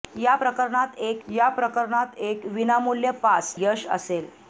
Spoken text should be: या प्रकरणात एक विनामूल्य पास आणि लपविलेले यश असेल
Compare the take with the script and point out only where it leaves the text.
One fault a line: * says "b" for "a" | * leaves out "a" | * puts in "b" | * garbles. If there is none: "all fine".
* puts in "या प्रकरणात एक"
* leaves out "आणि लपविलेले"